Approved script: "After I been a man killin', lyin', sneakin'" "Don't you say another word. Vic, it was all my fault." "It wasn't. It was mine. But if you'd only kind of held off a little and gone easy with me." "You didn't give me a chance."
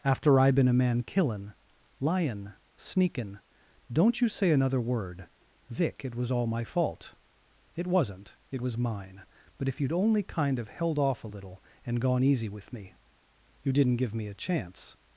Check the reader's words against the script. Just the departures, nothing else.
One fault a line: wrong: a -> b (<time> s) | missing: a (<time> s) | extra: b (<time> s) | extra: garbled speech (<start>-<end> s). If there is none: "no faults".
no faults